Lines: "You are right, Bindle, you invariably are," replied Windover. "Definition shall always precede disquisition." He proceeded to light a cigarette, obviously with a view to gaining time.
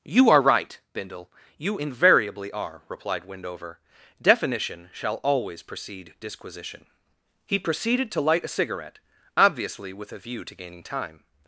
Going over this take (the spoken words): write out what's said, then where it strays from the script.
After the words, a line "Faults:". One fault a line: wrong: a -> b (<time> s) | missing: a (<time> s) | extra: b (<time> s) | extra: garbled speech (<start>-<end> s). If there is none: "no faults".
"You are right, Bindle, you invariably are," replied Windover. "Definition shall always precede disquisition." He proceeded to light a cigarette, obviously with a view to gaining time.
Faults:
no faults